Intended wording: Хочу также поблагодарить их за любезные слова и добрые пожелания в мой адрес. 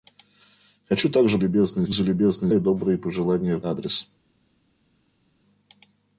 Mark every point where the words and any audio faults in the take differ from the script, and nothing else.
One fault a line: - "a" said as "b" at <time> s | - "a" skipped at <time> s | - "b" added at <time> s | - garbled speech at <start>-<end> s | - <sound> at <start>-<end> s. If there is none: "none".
- "поблагодарить" said as "любезные" at 1.4 s
- "слова" skipped at 2.5 s
- "мой" skipped at 3.6 s